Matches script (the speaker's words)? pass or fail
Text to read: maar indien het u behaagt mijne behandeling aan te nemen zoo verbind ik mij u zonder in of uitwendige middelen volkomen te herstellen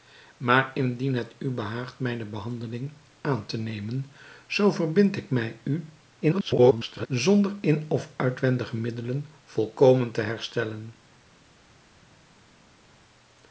fail